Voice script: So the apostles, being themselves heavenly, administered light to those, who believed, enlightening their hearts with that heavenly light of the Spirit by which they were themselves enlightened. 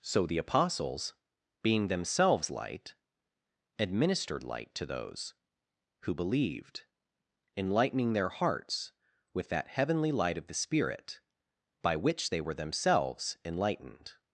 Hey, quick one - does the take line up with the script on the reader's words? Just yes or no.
no